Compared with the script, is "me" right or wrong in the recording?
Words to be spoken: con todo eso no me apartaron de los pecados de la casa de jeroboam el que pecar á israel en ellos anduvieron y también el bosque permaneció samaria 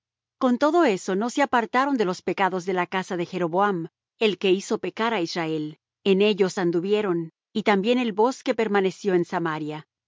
wrong